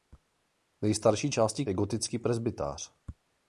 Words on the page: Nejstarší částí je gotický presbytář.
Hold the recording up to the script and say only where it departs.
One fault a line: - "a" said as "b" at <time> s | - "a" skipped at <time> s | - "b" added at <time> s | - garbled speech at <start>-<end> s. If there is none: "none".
none